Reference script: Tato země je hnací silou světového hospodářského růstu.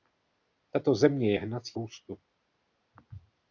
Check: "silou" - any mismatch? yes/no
yes